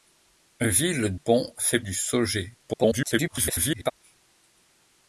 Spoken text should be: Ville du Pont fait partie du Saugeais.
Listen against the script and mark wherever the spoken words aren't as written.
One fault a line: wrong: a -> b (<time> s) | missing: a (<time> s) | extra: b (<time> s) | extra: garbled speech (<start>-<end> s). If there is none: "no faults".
missing: du (1.1 s)
missing: partie (1.8 s)
extra: garbled speech (2.6-3.9 s)